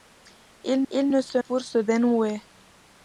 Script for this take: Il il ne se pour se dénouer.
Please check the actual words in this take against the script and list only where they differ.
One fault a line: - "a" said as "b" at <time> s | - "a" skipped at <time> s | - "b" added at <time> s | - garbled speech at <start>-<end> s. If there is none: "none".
none